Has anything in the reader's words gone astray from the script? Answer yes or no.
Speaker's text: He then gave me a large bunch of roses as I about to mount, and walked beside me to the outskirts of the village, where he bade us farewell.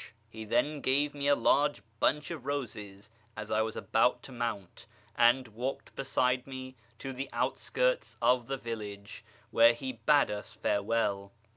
yes